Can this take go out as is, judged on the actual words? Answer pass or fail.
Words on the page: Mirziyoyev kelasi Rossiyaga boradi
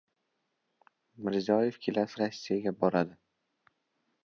pass